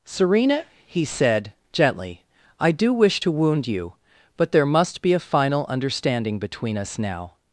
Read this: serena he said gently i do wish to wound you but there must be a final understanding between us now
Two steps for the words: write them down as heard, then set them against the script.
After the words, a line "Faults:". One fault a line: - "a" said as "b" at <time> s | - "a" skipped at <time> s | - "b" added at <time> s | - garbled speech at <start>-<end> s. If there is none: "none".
serena he said gently i do wish to wound you but there must be a final understanding between us now
Faults:
none